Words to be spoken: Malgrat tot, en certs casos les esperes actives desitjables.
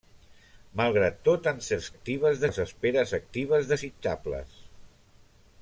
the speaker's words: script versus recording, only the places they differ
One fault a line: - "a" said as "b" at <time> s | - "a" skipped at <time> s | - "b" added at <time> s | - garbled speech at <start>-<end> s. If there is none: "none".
- "casos" said as "actives" at 1.9 s